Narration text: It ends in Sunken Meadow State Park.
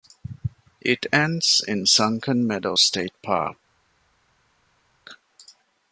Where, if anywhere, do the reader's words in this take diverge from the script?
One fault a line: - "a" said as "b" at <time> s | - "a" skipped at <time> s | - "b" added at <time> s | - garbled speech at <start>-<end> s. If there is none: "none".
none